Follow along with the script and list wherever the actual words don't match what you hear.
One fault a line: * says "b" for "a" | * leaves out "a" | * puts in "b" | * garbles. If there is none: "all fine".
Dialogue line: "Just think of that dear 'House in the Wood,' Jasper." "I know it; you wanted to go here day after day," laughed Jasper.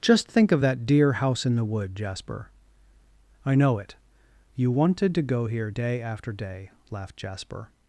all fine